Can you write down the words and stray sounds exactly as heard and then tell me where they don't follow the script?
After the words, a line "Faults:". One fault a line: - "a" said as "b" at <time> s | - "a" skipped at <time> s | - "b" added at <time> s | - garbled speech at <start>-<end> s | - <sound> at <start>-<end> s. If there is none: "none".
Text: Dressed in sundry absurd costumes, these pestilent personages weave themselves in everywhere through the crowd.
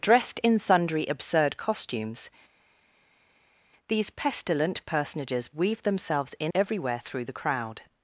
Dressed in sundry absurd costumes, these pestilent personages weave themselves in everywhere through the crowd.
Faults:
none